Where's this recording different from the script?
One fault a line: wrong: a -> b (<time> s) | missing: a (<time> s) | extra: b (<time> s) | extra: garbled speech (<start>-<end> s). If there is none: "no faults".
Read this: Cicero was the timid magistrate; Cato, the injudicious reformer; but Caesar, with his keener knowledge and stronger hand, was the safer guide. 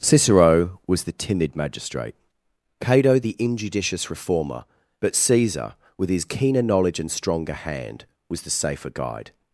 no faults